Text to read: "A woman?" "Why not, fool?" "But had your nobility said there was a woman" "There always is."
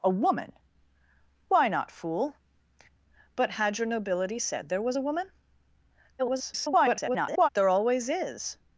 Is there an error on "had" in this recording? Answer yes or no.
no